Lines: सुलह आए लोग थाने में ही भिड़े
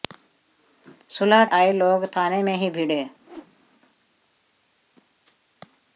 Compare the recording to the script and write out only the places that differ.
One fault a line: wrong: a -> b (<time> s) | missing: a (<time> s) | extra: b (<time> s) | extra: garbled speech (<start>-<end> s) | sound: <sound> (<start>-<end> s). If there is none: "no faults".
sound: whoosh (3.2-3.6 s)